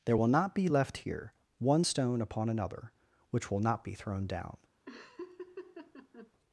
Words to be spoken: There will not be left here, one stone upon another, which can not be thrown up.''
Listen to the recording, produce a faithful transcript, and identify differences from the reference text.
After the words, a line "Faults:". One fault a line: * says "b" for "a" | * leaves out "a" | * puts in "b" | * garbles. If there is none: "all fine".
There will not be left here, one stone upon another, which will not be thrown down.''
Faults:
* says "will" for "can"
* says "down" for "up"